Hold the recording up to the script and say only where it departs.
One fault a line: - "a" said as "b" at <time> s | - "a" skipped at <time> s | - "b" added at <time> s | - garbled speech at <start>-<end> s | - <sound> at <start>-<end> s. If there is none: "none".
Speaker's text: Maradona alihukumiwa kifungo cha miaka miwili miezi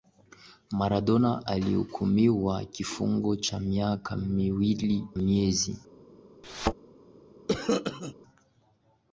- thud at 6.4-6.7 s
- cough at 7.5-8.1 s